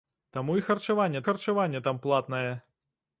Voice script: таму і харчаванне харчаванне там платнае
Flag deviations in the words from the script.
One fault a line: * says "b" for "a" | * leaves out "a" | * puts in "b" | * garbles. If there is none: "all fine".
all fine